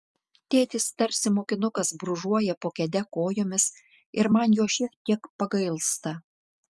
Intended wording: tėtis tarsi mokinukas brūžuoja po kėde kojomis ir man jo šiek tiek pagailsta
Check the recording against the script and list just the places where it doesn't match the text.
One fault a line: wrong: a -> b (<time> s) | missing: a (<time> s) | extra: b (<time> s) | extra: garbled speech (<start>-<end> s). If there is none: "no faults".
no faults